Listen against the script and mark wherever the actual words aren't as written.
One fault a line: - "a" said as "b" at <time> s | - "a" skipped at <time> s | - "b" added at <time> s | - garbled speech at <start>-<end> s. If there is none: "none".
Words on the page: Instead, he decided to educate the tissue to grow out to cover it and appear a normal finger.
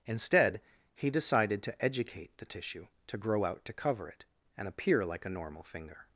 - "like" added at 5.0 s